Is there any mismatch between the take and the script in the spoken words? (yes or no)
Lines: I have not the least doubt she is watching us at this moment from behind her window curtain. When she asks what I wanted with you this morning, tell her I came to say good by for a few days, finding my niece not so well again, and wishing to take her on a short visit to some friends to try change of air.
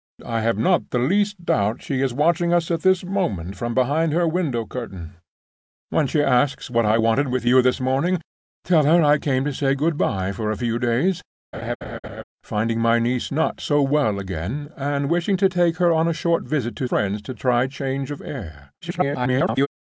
yes